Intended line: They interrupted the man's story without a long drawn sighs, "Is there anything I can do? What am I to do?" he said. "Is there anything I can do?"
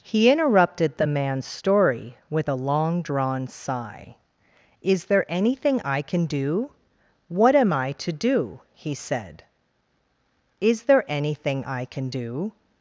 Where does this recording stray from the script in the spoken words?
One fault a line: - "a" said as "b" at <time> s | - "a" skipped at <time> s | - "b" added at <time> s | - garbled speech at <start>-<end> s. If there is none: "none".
- "They" said as "He" at 0.0 s
- "without" said as "with" at 2.3 s
- "sighs" said as "sigh" at 3.5 s